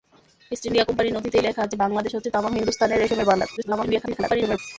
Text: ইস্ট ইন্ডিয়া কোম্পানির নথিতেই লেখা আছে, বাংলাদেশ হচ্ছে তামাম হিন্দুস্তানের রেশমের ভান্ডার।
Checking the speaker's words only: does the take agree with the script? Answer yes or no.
no